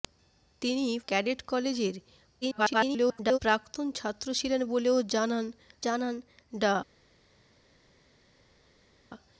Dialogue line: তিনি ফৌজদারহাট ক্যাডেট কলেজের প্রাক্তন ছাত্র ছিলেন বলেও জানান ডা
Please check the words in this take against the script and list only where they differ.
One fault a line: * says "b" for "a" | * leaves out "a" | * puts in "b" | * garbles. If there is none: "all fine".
* leaves out "ফৌজদারহাট"
* garbles
* puts in "জানান"